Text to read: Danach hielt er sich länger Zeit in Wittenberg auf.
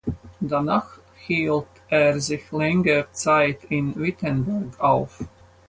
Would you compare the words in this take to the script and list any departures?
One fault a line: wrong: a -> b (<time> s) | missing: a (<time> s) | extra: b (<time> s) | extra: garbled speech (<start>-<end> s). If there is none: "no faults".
no faults